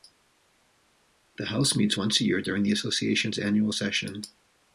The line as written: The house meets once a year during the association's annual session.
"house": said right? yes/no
yes